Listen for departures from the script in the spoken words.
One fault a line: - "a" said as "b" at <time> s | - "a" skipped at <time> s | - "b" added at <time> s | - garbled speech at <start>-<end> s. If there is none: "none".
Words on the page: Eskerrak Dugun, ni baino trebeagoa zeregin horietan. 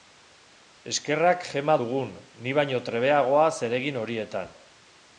- "Gema" added at 1.5 s